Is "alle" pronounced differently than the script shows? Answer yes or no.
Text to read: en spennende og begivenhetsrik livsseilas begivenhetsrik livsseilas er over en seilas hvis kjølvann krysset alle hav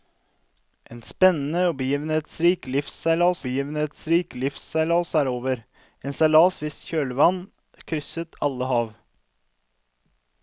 no